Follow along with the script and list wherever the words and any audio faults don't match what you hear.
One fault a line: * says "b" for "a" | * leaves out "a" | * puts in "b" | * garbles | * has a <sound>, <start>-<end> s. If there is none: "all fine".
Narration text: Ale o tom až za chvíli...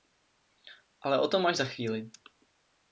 all fine